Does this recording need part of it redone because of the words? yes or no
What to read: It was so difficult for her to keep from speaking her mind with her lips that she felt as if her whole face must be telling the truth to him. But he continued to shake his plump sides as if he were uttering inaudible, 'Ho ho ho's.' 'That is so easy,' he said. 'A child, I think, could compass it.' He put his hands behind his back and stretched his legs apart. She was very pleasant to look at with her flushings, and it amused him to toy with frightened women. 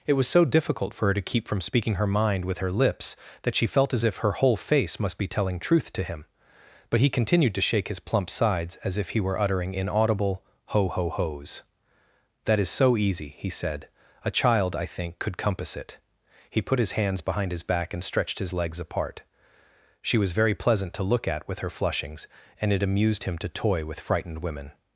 yes